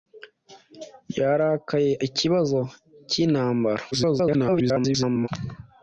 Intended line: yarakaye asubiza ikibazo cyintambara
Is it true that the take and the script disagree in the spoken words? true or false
true